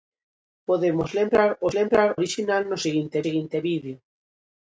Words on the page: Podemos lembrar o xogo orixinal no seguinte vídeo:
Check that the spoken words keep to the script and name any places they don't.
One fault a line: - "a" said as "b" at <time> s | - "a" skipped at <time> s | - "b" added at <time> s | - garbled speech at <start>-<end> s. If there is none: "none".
- "xogo" said as "lembrar" at 1.8 s
- "seguinte" added at 3.2 s